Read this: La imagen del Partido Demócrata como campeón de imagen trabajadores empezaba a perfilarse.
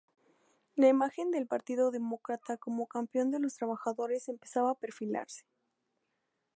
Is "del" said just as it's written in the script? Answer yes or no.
yes